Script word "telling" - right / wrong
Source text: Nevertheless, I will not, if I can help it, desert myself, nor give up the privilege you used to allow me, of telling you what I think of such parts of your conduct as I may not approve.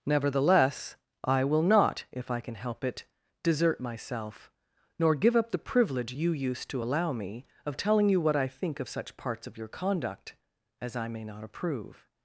right